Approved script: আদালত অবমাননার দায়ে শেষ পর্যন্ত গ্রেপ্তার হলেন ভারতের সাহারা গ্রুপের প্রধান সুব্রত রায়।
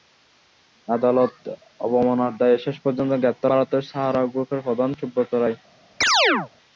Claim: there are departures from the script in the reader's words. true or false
true